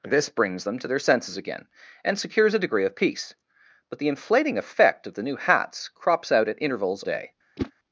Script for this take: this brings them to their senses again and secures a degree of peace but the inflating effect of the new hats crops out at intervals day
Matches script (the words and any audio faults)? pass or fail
fail